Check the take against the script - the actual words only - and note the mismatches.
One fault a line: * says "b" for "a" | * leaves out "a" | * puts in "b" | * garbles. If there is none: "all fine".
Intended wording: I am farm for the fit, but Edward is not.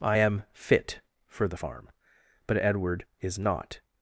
* says "fit" for "farm"
* says "farm" for "fit"